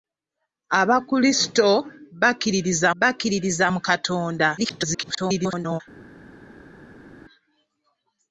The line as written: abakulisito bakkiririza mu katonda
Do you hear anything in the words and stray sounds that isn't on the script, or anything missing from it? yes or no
yes